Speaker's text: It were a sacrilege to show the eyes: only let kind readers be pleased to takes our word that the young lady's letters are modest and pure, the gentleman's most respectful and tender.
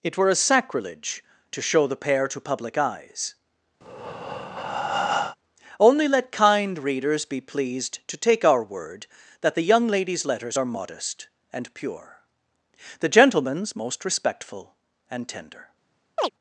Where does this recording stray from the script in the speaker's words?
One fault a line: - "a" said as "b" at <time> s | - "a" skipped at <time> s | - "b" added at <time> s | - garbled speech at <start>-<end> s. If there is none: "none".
- "pair to public" added at 1.9 s
- "takes" said as "take" at 8.2 s